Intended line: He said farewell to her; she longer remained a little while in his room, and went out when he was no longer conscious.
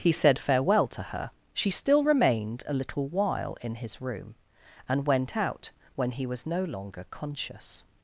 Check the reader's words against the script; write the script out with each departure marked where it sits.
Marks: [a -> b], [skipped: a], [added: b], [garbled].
He said farewell to her; she [longer -> still] remained a little while in his room, and went out when he was no longer conscious.